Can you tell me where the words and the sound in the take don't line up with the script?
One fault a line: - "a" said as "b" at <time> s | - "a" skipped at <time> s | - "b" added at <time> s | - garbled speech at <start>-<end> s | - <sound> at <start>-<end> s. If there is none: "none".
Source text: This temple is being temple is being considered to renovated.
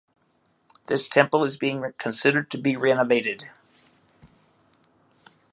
- "temple is being" skipped at 1.8 s
- "be" added at 2.6 s